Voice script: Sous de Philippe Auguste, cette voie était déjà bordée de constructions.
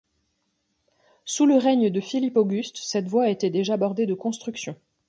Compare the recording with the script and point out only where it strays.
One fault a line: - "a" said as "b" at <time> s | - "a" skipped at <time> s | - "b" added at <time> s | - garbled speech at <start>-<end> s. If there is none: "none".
- "le règne" added at 1.4 s